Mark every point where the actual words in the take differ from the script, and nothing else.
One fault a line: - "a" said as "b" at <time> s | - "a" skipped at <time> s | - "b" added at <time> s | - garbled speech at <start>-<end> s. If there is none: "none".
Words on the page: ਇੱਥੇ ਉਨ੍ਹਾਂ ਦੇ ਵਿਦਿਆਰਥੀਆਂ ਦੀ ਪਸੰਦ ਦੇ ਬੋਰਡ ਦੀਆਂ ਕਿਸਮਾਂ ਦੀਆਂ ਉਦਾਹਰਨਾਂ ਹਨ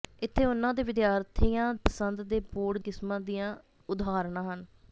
- "ਦੀ" skipped at 1.7 s
- "ਦੀਆਂ" skipped at 2.8 s